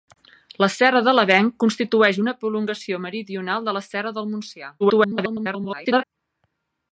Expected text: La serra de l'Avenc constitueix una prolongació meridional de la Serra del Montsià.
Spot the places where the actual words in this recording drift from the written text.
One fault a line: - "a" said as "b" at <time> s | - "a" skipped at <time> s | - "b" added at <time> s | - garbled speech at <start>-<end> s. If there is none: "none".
- garbled speech at 4.8-6.0 s